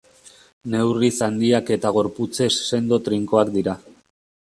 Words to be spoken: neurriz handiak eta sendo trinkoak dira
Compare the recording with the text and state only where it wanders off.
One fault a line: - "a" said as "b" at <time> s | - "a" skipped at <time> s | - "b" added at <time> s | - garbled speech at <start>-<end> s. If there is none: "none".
- "gorputzez" added at 2.0 s